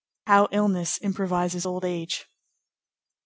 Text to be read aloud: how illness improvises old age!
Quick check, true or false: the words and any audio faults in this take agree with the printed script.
true